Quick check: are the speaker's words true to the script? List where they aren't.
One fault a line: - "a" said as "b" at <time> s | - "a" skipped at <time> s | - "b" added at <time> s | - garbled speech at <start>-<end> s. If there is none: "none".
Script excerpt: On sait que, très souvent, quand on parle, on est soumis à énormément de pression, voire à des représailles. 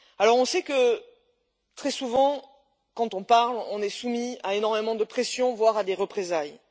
none